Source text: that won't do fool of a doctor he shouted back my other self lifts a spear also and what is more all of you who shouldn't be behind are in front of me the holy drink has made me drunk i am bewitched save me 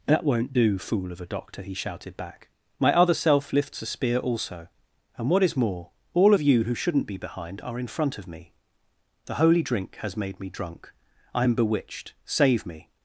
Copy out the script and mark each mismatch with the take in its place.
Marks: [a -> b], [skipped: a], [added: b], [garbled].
that won't do fool of a doctor he shouted back my other self lifts a spear also and what is more all of you who shouldn't be behind are in front of me the holy drink has made me drunk i am bewitched save me